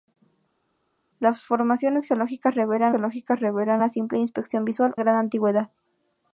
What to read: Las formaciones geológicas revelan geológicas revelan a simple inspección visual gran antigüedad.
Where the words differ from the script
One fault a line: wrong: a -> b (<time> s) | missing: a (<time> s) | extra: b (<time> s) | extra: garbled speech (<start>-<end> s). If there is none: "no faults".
no faults